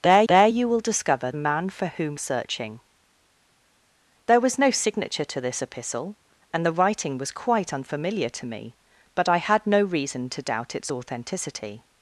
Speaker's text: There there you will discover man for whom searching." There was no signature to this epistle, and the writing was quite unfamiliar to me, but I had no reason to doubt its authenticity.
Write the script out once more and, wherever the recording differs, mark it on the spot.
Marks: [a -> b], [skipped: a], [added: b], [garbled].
There there you will discover man for whom searching." There was no signature to this epistle, and the writing was quite unfamiliar to me, but I had no reason to doubt its authenticity.